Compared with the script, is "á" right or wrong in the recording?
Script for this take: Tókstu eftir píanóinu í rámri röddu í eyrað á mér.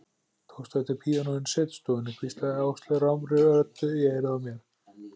right